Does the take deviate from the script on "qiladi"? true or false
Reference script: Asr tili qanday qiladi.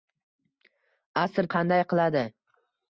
false